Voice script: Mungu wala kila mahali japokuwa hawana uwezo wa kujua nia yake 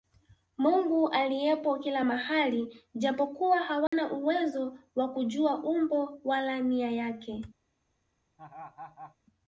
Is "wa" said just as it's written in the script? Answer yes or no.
yes